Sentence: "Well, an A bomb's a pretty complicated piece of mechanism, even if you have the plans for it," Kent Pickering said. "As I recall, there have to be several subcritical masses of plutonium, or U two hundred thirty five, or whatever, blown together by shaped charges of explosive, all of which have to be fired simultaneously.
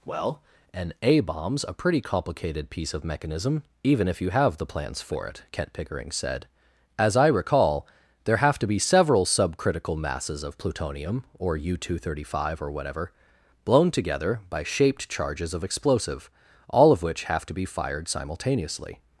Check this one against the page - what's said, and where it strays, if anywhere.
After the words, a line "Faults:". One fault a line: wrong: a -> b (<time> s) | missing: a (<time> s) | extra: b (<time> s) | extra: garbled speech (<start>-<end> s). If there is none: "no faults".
"Well, an A bomb's a pretty complicated piece of mechanism, even if you have the plans for it," Kent Pickering said. "As I recall, there have to be several subcritical masses of plutonium, or U two hundred thirty five, or whatever, blown together by shaped charges of explosive, all of which have to be fired simultaneously.
Faults:
no faults